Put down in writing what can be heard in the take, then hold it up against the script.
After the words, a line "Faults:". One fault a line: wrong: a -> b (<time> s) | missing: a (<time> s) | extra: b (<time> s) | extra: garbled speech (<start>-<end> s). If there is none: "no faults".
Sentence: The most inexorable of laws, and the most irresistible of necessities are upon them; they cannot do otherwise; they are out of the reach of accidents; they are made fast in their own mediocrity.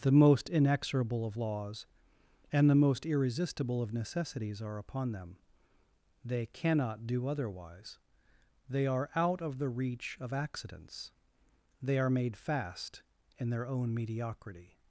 The most inexorable of laws, and the most irresistible of necessities are upon them; they cannot do otherwise; they are out of the reach of accidents; they are made fast in their own mediocrity.
Faults:
no faults